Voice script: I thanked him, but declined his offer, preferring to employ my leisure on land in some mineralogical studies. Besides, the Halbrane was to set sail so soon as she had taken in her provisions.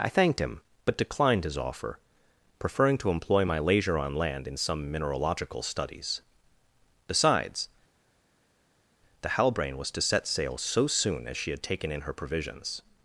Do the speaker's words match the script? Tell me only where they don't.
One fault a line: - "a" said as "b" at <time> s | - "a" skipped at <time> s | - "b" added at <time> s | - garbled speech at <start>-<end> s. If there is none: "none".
none